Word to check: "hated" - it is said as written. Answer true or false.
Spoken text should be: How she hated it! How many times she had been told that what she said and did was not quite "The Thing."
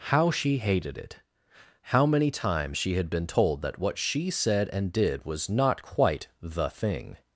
true